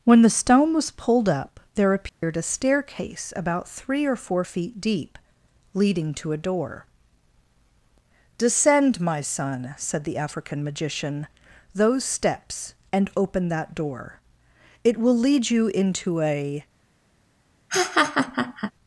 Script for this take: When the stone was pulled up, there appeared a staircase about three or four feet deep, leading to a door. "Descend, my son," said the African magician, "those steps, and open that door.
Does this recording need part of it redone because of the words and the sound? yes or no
yes